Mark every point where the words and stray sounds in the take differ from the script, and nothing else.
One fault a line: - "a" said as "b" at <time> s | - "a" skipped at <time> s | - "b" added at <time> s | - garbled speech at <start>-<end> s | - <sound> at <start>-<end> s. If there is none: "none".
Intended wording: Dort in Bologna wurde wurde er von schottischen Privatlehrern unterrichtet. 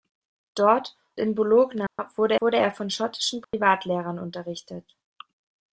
- dropout at 1.9-2.0 s
- dropout at 3.4-3.5 s